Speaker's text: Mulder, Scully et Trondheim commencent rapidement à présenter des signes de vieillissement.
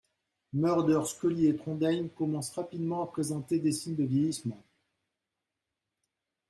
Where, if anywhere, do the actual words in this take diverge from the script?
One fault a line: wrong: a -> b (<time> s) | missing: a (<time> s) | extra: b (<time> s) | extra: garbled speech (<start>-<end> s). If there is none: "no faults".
no faults